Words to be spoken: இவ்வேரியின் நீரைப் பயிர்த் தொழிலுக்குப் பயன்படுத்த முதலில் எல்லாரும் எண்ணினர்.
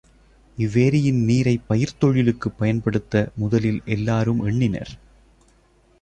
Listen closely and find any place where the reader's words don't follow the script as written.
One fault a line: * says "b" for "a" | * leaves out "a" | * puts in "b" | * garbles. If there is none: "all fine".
all fine